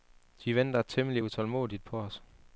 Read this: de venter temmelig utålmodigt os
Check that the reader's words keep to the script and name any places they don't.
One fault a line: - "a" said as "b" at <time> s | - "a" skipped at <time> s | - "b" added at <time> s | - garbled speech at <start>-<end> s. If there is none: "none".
- "på" added at 1.8 s